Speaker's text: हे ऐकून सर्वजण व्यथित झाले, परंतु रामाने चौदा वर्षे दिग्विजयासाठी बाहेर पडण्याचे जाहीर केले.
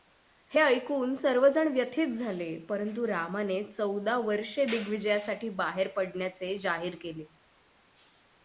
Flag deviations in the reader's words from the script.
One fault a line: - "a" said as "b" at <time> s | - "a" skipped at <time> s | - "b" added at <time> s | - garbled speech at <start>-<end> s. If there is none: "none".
none